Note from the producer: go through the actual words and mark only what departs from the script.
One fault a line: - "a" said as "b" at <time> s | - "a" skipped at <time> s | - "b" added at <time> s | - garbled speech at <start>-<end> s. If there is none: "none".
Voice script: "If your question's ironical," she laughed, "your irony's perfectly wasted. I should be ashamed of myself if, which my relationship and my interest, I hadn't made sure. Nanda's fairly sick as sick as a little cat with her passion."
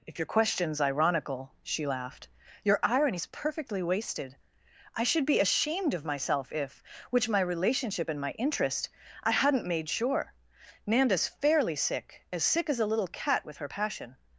none